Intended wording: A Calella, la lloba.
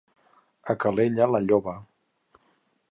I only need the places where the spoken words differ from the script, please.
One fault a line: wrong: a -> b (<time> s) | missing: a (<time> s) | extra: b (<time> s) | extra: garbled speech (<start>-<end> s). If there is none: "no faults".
no faults